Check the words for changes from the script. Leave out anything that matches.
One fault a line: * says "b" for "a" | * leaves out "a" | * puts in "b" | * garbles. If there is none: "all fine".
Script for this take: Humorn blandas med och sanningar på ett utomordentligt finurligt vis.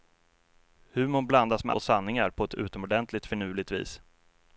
all fine